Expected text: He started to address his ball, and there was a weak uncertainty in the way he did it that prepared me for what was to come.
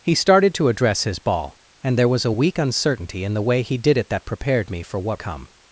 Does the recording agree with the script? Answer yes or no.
no